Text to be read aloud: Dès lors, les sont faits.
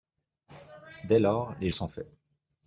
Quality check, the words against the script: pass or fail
pass